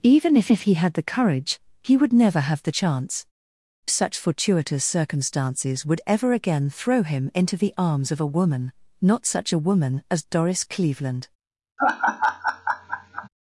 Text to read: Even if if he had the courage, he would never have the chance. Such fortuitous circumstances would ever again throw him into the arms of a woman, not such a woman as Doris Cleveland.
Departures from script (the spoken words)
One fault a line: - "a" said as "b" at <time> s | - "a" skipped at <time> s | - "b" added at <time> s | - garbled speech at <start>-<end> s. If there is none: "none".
none